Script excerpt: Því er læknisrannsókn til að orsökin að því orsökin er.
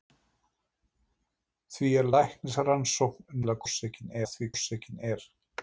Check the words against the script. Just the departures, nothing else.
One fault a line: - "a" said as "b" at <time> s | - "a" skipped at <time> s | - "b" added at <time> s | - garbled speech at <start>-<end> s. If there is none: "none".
none